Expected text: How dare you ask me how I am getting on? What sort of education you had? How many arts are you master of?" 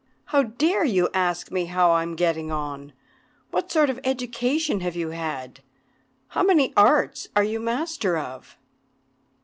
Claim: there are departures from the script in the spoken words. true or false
true